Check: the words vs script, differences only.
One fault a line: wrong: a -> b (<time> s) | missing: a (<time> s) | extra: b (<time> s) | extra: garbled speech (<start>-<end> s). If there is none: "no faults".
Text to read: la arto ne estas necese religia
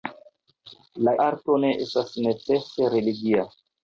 no faults